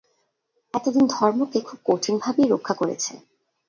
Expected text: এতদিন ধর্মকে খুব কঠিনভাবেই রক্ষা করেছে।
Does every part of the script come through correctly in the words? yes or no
yes